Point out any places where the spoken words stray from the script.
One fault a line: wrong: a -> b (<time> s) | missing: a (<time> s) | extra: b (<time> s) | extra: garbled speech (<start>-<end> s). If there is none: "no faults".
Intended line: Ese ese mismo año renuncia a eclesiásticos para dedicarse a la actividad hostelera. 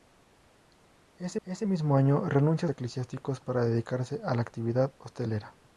no faults